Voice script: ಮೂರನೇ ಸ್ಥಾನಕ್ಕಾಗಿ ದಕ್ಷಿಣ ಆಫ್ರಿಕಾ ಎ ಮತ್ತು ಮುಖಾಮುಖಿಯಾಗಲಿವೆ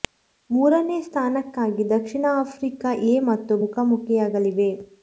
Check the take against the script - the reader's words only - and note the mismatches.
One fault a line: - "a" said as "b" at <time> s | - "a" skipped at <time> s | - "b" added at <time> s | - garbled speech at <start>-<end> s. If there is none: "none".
none